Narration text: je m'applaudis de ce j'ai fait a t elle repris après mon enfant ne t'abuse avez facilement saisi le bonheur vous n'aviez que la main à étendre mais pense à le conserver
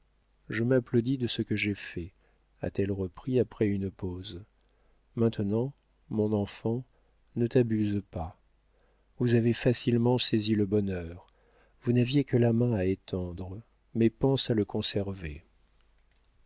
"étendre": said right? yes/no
yes